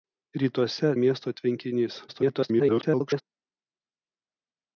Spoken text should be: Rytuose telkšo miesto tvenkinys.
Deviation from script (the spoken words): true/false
true